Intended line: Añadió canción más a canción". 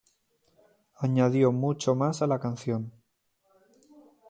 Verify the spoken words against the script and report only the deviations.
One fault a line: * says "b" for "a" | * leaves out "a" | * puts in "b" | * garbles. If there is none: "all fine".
* says "mucho" for "canción"
* puts in "la"